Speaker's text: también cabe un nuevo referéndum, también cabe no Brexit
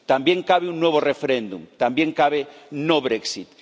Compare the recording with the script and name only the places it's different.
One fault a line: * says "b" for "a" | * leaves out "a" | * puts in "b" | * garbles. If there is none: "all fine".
all fine